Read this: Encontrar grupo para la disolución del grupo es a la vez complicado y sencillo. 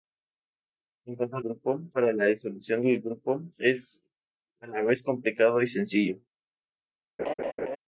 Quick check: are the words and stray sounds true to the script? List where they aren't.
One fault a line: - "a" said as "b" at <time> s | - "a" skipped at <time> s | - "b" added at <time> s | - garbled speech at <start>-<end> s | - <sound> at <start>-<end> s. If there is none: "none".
- laugh at 7.2-7.8 s